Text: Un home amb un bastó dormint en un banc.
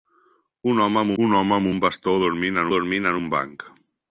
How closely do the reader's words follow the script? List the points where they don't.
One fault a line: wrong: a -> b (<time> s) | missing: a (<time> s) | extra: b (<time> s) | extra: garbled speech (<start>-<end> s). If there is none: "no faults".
extra: home amb un (1.4 s)
extra: dormint en (2.7 s)